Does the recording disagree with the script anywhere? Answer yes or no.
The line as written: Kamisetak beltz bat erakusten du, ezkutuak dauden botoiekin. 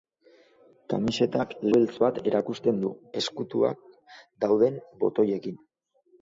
no